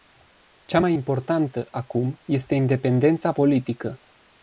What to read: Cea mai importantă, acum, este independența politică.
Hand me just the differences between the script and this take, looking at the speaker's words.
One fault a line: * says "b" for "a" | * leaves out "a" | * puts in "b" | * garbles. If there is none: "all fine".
all fine